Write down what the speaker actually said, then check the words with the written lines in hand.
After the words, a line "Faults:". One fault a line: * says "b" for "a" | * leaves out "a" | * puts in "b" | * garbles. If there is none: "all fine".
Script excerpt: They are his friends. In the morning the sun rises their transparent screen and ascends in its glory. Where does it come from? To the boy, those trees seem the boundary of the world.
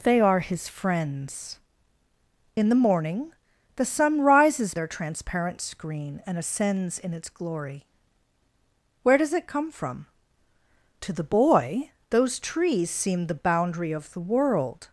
They are his friends. In the morning the sun rises their transparent screen and ascends in its glory. Where does it come from? To the boy, those trees seem the boundary of the world.
Faults:
all fine